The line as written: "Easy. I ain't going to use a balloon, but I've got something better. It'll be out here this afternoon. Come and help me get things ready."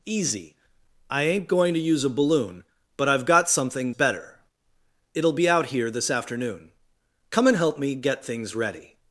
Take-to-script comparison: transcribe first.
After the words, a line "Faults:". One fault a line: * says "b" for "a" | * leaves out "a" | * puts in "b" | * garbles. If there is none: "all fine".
"Easy. I ain't going to use a balloon, but I've got something better. It'll be out here this afternoon. Come and help me get things ready."
Faults:
all fine